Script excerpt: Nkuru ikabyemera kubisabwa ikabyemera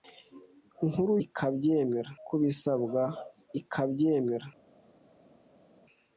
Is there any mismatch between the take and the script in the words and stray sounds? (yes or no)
no